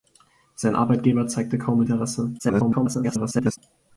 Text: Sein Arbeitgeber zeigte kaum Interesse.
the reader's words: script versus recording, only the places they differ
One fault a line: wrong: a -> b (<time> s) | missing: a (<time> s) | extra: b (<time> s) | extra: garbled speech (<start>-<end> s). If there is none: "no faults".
extra: garbled speech (2.4-3.6 s)